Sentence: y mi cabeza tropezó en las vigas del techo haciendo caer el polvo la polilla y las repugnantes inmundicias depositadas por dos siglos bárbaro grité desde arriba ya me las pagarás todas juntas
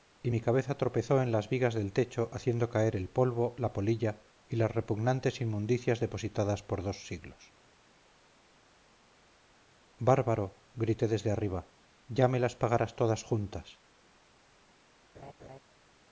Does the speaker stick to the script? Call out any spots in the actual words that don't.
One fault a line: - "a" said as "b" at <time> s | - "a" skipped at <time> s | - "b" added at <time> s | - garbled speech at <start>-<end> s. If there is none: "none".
none